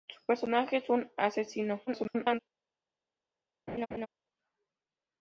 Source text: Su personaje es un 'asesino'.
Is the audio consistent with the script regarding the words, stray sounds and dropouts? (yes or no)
no